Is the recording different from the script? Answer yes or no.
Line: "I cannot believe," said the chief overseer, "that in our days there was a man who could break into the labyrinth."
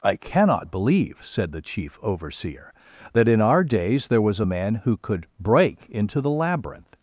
no